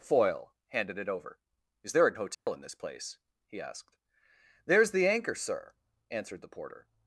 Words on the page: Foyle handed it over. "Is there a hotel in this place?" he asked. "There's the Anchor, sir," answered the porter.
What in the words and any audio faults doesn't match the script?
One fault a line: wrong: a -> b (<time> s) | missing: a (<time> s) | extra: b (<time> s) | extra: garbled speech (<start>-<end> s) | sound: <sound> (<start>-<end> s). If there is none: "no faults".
sound: dropout (2.3-2.5 s)